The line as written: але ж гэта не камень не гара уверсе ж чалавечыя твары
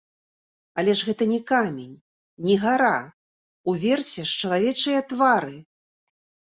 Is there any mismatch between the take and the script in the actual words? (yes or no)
no